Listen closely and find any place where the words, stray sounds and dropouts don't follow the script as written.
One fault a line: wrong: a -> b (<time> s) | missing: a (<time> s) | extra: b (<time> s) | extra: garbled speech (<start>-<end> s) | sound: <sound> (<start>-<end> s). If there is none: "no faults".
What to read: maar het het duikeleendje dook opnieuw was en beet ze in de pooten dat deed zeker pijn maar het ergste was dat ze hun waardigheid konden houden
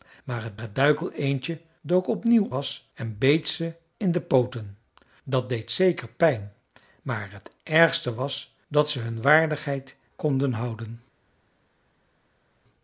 no faults